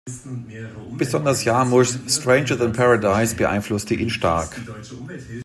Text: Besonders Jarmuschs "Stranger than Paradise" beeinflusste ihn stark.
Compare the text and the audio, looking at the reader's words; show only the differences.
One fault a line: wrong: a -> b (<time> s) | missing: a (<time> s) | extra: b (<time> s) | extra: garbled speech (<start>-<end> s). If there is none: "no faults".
no faults